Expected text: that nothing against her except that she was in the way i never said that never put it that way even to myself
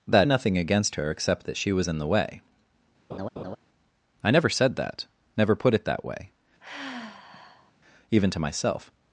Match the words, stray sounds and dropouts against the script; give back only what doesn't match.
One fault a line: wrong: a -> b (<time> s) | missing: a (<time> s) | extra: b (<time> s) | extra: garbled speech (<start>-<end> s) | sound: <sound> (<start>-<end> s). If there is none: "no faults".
sound: laugh (3.1-3.6 s)
sound: sigh (6.6-7.7 s)